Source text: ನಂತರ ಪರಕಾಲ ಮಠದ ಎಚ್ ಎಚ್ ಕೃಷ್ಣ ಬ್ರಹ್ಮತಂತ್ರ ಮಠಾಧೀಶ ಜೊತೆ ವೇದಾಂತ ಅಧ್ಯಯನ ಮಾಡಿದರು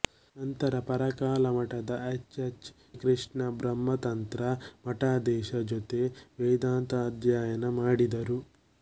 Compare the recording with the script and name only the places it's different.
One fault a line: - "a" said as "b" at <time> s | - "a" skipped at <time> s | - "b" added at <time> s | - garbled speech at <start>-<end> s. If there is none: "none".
none